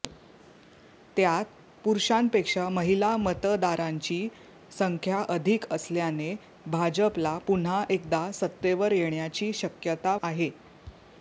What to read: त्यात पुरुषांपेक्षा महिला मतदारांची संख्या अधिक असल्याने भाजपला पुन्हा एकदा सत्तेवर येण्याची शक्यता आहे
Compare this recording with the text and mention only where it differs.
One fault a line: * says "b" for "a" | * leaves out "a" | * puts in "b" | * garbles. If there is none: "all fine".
all fine